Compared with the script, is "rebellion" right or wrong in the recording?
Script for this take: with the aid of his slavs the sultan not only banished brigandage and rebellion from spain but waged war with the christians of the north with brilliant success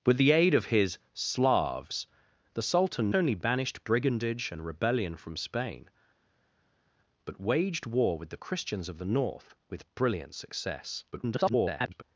right